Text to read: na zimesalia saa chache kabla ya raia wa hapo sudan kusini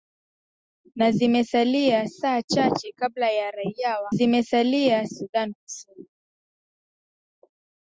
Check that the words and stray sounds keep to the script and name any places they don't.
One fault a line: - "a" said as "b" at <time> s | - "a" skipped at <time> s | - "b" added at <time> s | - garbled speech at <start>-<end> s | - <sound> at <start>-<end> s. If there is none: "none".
- "hapo" said as "zimesalia" at 4.1 s